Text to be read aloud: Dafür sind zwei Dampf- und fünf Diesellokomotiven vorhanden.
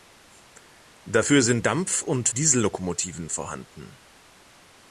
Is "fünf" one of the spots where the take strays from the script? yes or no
yes